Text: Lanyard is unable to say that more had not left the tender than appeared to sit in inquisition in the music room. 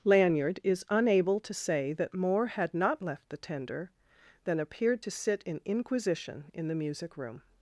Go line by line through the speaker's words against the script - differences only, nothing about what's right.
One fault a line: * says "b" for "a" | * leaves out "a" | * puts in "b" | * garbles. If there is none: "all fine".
all fine